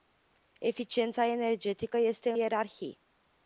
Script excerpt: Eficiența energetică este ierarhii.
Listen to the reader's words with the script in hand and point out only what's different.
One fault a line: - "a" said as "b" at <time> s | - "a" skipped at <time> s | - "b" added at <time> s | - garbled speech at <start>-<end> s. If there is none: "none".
none